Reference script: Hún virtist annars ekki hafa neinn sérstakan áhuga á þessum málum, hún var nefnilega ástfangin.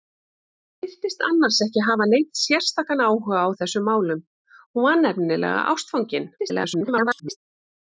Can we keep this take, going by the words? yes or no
no